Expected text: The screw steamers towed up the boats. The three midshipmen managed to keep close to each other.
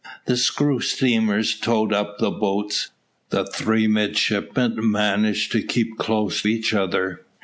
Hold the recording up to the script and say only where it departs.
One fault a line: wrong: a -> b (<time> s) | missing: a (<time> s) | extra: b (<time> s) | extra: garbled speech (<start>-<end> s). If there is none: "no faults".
missing: to (6.4 s)